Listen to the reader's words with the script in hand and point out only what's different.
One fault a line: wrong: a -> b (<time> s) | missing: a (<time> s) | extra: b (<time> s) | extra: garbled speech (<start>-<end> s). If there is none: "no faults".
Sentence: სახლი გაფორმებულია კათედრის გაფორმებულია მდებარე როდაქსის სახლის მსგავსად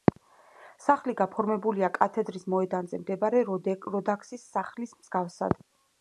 wrong: გაფორმებულია -> მოედანზე (2.5 s)